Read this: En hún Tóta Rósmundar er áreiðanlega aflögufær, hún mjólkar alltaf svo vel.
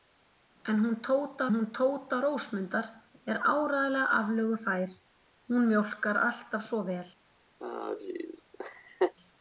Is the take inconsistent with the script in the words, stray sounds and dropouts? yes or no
yes